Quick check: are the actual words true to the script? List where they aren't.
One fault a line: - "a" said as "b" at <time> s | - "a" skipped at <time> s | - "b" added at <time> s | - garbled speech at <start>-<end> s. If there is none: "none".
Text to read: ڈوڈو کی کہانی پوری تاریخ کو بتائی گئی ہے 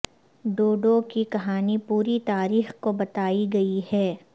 none